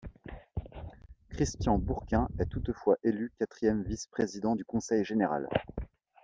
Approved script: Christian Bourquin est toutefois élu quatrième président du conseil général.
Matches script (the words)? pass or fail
fail